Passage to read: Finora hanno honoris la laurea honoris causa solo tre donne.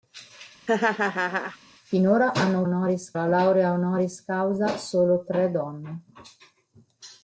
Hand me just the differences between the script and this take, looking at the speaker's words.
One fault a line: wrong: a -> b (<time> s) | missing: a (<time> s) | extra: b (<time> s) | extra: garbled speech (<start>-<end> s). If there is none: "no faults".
no faults